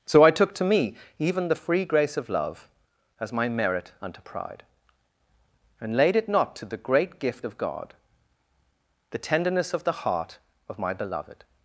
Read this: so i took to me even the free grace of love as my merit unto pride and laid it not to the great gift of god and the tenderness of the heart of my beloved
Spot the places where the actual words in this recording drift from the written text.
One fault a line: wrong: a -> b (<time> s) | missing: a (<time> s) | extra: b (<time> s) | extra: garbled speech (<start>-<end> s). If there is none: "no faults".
missing: and (7.9 s)